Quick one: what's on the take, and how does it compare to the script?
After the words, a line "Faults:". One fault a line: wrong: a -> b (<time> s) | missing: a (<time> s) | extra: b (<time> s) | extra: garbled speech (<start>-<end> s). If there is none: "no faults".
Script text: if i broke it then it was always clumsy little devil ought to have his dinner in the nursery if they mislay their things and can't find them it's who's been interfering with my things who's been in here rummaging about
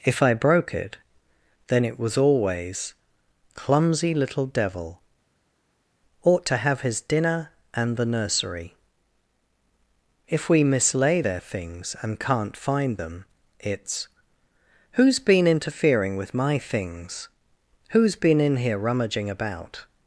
if i broke it then it was always clumsy little devil ought to have his dinner and the nursery if we mislay their things and can't find them it's who's been interfering with my things who's been in here rummaging about
Faults:
wrong: in -> and (7.7 s)
wrong: they -> we (10.5 s)